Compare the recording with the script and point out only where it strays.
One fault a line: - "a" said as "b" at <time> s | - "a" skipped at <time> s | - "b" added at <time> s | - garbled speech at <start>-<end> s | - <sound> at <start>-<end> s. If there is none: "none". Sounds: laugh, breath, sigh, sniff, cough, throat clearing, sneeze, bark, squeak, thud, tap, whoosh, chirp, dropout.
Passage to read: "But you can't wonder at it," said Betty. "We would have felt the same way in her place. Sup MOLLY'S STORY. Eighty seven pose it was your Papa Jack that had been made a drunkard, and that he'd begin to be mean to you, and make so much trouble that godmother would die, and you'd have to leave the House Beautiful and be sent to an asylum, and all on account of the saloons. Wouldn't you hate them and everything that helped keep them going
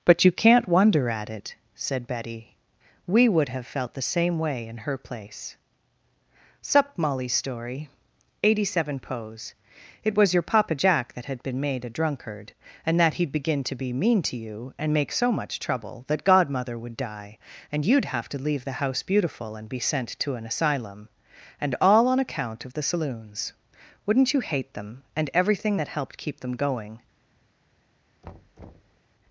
- thud at 28.2-29.0 s